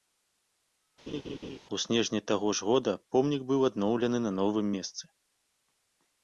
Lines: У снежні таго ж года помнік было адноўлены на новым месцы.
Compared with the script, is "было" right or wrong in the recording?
wrong